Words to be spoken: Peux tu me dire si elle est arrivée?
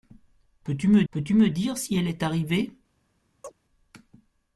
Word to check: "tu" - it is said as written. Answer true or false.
true